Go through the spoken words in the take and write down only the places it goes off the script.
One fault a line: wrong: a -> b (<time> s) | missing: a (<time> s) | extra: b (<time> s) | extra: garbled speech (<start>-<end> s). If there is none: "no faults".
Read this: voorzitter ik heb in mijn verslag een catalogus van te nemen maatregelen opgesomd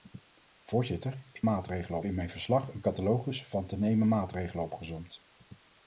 wrong: heb -> maatregelen (1.4 s)